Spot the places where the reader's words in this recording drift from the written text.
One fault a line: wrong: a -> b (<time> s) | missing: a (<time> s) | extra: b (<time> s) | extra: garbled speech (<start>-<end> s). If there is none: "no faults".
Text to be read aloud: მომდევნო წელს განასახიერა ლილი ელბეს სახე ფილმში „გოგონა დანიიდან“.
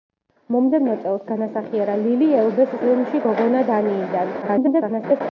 missing: სახე (2.7 s)
extra: garbled speech (4.4-5.2 s)